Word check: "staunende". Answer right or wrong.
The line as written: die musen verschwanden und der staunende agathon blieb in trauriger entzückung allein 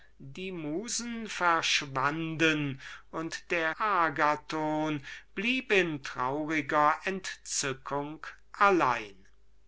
wrong